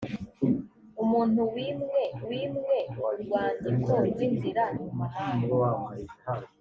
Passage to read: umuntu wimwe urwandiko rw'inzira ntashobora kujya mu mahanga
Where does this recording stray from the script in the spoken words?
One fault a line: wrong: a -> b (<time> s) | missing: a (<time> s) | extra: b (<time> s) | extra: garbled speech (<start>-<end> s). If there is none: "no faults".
extra: wimwe (2.3 s)
missing: ntashobora kujya (4.6 s)